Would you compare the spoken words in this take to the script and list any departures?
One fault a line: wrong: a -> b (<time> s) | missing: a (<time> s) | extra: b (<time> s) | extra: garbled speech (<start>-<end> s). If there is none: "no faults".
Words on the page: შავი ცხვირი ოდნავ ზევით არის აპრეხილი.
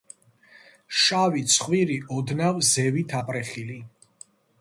missing: არის (3.2 s)